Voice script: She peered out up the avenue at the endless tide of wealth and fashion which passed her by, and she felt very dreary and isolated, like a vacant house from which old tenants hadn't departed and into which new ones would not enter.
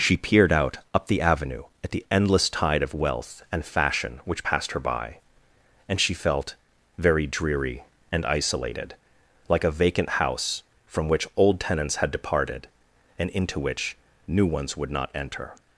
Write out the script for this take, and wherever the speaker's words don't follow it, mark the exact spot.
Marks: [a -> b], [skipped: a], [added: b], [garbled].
She peered out up the avenue at the endless tide of wealth and fashion which passed her by, and she felt very dreary and isolated, like a vacant house from which old tenants [hadn't -> had] departed and into which new ones would not enter.